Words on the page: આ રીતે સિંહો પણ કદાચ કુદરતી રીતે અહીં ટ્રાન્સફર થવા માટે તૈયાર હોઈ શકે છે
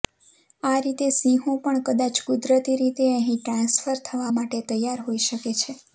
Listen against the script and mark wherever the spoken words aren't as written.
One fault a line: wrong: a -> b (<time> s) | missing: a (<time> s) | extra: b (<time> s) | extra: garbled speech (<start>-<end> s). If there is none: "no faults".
no faults